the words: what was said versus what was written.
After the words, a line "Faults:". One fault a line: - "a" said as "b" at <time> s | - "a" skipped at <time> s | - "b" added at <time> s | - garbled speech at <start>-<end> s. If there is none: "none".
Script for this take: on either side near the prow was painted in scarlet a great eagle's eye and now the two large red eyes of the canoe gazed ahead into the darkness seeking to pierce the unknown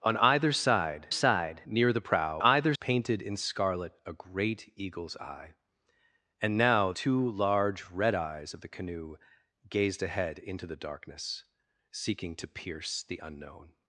on either side side near the prow either painted in scarlet a great eagle's eye and now two large red eyes of the canoe gazed ahead into the darkness seeking to pierce the unknown
Faults:
- "side" added at 1.1 s
- "was" said as "either" at 2.4 s
- "the" skipped at 6.9 s